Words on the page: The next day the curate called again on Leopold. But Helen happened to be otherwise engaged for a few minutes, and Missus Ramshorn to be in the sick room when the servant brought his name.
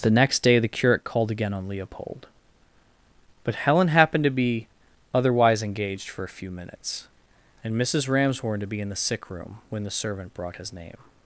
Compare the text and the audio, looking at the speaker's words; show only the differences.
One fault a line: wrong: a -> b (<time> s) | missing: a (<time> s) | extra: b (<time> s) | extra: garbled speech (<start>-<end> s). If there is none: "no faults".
no faults